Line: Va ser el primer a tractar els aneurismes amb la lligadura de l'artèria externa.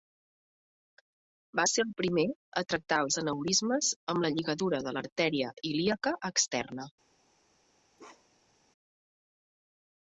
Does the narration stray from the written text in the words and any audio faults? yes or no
yes